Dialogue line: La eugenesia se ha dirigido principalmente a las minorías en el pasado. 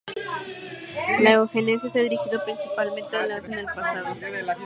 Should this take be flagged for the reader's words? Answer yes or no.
yes